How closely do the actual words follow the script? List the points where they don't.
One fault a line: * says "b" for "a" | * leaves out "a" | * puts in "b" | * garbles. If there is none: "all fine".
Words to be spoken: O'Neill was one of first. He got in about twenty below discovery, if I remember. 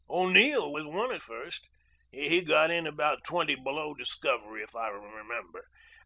all fine